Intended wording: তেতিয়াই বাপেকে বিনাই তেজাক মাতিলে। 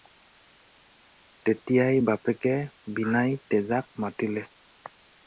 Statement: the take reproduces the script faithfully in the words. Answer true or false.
true